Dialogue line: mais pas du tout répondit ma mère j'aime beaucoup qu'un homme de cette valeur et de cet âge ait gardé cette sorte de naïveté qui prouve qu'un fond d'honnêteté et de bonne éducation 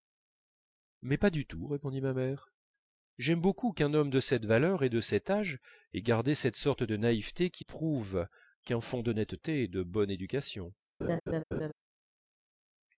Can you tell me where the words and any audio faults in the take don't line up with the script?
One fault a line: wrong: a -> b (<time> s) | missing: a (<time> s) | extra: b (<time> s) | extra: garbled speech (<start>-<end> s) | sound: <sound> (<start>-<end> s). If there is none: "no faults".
sound: laugh (11.0-11.7 s)